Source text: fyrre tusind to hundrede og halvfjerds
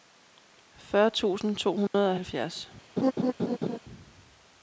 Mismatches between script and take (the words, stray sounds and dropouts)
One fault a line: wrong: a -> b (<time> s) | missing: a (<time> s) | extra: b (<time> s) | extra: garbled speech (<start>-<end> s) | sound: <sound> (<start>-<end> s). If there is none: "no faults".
sound: dropout (1.9-1.9 s)
sound: laugh (3.0-3.8 s)